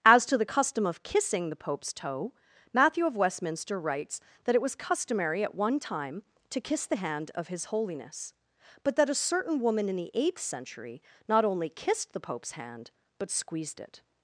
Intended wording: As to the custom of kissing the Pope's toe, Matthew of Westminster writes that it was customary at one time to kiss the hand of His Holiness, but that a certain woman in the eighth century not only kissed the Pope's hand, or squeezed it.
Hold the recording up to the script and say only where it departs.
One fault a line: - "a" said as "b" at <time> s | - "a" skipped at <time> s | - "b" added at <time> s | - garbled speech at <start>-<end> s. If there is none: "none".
- "or" said as "but" at 13.2 s